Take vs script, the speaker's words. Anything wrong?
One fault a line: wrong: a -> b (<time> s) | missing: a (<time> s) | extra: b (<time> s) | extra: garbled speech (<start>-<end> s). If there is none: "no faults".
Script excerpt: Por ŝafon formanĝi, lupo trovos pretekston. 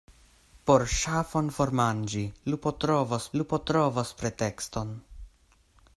extra: lupo trovos (3.4 s)